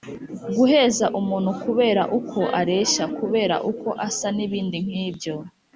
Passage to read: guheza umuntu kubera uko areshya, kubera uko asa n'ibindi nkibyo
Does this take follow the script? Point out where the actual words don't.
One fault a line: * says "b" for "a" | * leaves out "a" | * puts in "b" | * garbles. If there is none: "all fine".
all fine